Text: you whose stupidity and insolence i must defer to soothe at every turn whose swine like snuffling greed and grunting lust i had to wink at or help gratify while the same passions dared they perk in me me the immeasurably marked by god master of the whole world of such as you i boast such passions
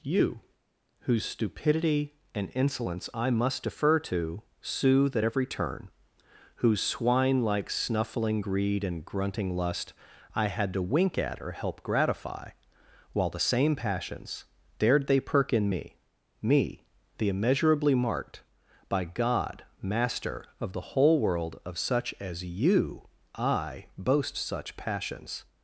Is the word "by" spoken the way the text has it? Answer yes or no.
yes